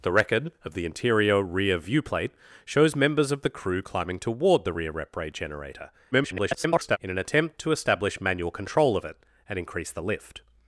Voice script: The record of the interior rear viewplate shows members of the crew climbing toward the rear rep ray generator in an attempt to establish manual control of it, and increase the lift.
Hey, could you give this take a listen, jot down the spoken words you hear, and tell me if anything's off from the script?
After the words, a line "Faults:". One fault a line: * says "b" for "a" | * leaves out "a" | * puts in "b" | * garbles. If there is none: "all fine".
The record of the interior rear viewplate shows members of the crew climbing toward the rear rep ray generator [garbled] in an attempt to establish manual control of it, and increase the lift.
Faults:
* garbles